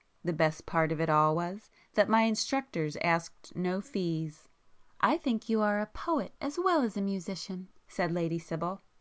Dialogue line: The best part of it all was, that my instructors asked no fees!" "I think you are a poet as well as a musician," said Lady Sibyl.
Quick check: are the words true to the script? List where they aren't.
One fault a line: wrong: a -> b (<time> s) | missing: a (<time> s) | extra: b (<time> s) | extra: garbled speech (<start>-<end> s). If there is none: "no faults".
no faults